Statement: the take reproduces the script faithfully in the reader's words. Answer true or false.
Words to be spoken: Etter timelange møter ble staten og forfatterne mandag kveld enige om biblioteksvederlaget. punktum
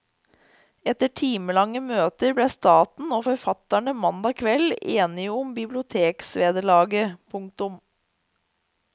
true